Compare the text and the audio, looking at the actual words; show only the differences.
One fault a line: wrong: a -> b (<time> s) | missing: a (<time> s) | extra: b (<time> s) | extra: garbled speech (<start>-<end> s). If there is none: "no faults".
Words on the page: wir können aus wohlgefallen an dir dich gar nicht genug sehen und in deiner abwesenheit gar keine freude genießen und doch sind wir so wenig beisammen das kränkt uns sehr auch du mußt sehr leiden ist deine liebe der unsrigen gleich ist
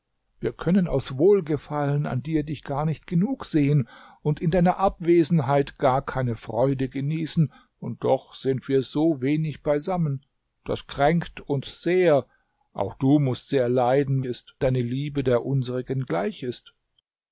no faults